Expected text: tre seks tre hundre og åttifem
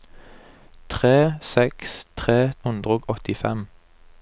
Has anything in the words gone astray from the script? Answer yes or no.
no